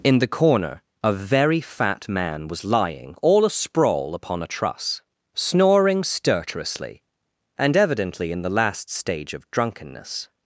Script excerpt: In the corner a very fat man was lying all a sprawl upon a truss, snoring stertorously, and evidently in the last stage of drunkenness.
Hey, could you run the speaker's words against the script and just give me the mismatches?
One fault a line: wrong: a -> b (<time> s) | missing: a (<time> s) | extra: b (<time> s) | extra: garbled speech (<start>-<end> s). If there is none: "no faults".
no faults